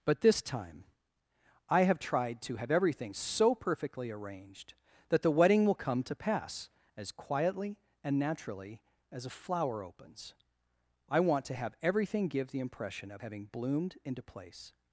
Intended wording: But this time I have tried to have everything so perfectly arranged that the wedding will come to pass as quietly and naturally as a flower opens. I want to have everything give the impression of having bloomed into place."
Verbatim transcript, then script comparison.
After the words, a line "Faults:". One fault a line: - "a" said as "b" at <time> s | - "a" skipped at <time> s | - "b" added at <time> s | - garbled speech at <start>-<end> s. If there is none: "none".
But this time I have tried to have everything so perfectly arranged that the wedding will come to pass as quietly and naturally as a flower opens. I want to have everything give the impression of having bloomed into place."
Faults:
none